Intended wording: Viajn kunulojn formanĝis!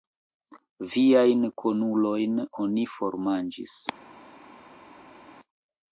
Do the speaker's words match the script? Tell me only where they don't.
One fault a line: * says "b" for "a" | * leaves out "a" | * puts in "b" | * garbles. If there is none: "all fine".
* puts in "oni"